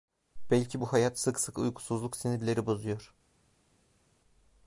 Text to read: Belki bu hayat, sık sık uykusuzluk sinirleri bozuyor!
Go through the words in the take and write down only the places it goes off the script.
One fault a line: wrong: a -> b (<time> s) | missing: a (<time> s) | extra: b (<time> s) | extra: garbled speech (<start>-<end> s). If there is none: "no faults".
no faults